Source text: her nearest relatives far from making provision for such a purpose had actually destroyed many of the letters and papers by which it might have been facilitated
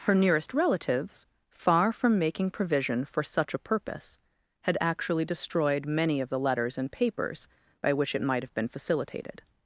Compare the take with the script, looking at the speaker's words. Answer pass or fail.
pass